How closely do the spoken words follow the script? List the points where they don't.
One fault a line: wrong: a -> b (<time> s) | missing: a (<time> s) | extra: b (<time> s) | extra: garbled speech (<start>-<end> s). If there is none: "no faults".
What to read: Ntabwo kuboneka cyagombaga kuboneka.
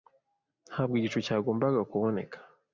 wrong: kuboneka -> igicu (1.0 s)